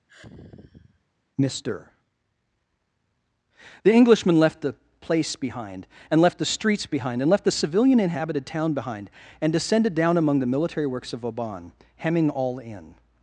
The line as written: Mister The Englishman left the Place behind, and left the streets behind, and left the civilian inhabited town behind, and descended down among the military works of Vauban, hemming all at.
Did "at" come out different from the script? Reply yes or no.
yes